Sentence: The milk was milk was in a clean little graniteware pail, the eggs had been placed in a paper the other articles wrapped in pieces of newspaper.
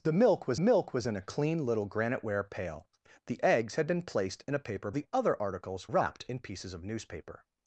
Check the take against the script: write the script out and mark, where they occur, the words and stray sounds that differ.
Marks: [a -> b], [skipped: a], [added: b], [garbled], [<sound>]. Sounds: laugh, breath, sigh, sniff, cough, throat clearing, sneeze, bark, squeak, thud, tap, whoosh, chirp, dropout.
The milk was milk was in a clean little graniteware pail, the eggs had been placed in a paper the other articles wrapped in pieces of newspaper.